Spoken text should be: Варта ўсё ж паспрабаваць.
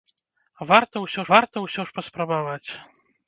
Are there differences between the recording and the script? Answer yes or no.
yes